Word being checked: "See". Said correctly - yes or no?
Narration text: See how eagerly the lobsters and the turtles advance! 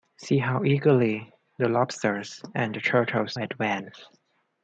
yes